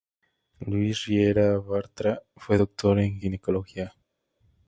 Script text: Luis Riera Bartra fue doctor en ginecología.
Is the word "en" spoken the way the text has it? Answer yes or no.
yes